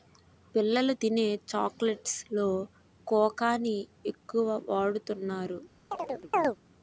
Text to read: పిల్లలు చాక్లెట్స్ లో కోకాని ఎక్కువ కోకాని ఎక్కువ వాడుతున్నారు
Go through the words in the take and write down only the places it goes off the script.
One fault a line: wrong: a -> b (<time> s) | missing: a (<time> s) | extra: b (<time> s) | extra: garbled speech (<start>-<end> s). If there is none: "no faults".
extra: తినే (1.0 s)
missing: కోకాని ఎక్కువ (4.5 s)